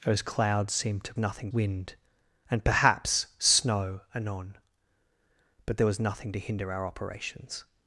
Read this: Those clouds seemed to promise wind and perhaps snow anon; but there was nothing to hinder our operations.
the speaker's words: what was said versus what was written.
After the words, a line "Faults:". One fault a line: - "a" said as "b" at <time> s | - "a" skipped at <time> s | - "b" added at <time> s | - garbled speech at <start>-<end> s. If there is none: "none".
Those clouds seemed to nothing wind and perhaps snow anon; but there was nothing to hinder our operations.
Faults:
- "promise" said as "nothing" at 1.2 s